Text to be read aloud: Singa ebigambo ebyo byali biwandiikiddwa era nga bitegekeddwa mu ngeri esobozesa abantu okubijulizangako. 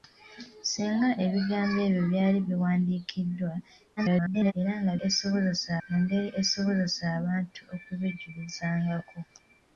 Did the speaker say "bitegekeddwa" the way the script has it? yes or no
no